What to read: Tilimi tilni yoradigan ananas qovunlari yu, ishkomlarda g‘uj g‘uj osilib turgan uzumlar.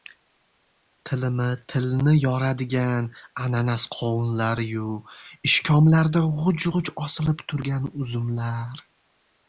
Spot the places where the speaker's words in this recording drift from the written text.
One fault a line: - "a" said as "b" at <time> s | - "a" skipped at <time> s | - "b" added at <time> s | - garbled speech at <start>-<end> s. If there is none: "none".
none